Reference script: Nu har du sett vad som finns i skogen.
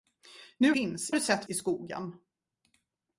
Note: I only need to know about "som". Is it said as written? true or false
false